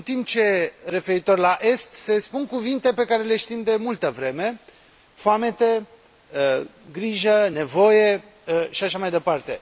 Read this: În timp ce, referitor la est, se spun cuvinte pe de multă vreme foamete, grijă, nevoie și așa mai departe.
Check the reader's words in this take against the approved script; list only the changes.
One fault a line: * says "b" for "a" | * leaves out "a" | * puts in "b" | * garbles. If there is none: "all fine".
* puts in "care le știm"